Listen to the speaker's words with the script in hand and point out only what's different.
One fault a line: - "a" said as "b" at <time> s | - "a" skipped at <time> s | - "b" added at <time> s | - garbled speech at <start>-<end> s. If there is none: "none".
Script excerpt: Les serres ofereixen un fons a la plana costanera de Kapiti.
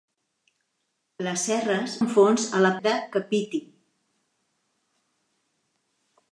- "ofereixen" skipped at 2.0 s
- "plana costanera" skipped at 2.7 s